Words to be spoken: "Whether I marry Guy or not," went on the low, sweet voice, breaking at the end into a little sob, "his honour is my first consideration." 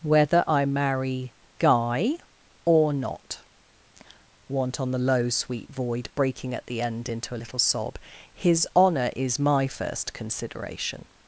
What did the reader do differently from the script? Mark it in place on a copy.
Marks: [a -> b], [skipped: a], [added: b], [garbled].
"Whether I marry Guy or not," [went -> want] on the low, sweet [voice, -> void] breaking at the end into a little sob, "his honour is my first consideration."